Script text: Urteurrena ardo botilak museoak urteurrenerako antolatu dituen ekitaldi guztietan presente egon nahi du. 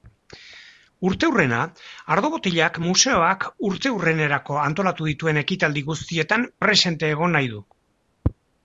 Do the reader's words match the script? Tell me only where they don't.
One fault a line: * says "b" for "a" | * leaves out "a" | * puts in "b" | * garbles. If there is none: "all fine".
all fine